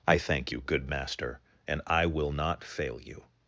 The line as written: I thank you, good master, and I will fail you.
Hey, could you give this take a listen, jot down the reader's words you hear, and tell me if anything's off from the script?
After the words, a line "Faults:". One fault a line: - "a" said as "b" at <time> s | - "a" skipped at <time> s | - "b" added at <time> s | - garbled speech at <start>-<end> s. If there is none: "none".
I thank you, good master, and I will not fail you.
Faults:
- "not" added at 2.3 s